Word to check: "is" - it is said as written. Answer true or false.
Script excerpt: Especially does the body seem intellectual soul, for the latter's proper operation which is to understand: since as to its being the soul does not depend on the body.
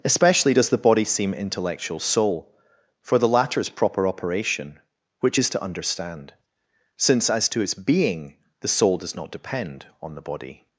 true